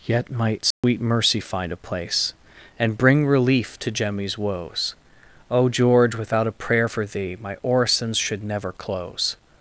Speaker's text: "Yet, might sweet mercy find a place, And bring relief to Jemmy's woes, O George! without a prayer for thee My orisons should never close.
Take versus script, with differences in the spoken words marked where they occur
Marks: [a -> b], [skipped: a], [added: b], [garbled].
"Yet, might sweet mercy find a place, And bring relief to Jemmy's woes, O George! without a prayer for thee My orisons should never close.